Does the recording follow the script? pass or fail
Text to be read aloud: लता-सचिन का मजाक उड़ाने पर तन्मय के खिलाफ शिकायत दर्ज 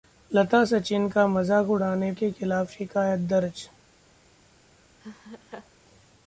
fail